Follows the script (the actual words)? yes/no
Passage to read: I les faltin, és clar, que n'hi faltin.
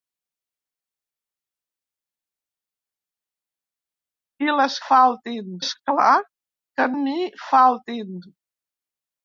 yes